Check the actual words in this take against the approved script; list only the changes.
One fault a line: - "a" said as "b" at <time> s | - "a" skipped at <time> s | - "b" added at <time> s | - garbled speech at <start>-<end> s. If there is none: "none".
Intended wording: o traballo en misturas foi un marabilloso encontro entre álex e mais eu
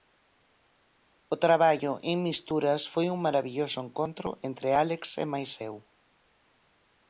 none